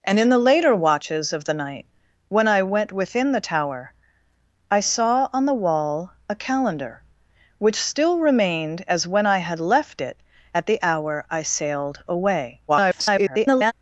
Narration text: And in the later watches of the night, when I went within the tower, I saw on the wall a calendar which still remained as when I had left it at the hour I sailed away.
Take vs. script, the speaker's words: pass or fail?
fail